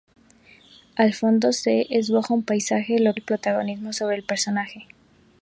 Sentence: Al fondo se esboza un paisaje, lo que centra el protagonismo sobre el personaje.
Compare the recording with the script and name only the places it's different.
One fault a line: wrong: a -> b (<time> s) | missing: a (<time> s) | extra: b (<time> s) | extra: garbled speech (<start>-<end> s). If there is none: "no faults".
missing: que centra (3.1 s)